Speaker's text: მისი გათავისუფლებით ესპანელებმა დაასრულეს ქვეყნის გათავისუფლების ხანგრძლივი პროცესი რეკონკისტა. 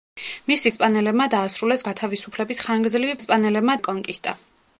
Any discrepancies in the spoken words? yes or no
yes